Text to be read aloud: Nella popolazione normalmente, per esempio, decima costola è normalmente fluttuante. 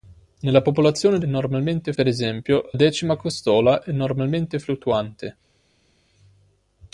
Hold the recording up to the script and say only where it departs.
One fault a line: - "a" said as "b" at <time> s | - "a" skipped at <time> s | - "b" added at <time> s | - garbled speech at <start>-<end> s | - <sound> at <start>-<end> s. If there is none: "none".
none